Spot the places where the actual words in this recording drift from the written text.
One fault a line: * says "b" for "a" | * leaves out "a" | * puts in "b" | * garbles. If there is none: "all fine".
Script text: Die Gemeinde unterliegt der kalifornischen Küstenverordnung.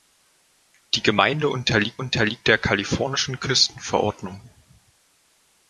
* puts in "unterliegt"